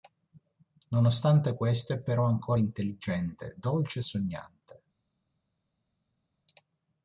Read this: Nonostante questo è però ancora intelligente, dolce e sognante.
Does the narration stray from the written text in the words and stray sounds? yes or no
no